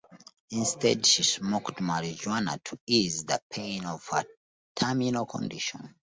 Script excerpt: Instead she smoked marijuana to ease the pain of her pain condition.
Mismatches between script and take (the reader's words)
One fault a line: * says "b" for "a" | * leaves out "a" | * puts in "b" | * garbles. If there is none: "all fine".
* says "terminal" for "pain"